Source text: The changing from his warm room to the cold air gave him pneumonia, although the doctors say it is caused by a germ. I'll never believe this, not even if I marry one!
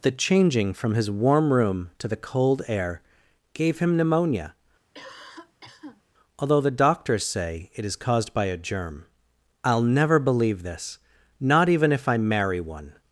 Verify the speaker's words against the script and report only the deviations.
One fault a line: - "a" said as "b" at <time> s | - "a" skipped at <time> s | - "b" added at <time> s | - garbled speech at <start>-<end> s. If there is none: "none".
none